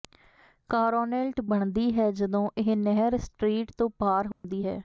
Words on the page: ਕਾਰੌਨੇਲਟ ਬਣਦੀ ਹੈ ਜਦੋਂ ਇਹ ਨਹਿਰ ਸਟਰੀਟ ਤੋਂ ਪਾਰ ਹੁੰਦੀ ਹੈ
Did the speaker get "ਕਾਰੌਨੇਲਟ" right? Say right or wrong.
right